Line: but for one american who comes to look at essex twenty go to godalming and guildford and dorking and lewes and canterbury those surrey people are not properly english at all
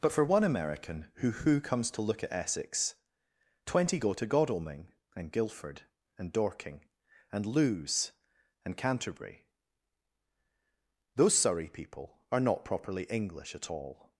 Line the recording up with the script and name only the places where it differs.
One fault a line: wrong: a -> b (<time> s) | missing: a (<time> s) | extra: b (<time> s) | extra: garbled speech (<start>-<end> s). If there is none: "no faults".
extra: who (1.3 s)